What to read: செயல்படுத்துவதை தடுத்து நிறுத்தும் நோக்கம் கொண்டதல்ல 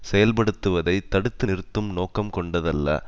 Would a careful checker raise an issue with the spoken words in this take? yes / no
no